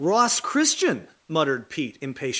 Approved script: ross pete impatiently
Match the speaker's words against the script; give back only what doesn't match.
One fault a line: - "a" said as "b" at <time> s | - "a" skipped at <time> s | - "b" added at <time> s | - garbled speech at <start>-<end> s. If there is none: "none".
- "christian muttered" added at 0.4 s